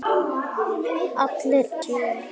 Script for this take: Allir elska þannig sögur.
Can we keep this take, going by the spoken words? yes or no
no